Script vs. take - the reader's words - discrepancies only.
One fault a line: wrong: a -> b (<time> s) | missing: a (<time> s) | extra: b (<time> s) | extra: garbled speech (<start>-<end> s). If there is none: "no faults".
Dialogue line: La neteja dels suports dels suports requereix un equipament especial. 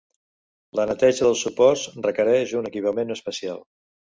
missing: dels suports (1.8 s)